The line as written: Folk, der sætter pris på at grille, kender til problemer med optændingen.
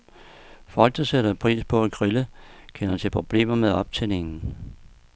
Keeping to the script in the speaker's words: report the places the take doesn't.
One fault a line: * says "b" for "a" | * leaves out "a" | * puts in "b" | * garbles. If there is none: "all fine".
all fine